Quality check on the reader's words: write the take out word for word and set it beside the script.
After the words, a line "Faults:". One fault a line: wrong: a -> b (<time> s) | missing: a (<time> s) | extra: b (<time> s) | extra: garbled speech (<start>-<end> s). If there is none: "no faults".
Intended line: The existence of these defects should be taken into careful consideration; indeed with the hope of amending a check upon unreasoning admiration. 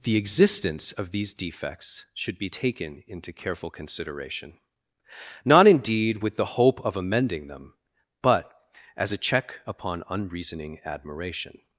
The existence of these defects should be taken into careful consideration; not indeed with the hope of amending them, but as a check upon unreasoning admiration.
Faults:
extra: not (5.4 s)
extra: them but as (7.5 s)